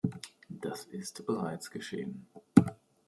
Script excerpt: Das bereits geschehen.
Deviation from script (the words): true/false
true